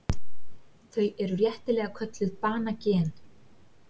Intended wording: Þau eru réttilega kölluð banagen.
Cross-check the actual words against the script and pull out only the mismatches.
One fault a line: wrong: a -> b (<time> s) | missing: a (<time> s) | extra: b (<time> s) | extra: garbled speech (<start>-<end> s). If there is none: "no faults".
no faults